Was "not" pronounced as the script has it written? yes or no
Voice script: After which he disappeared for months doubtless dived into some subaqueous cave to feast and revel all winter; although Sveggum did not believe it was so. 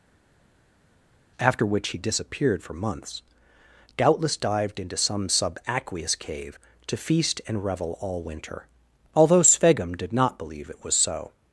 yes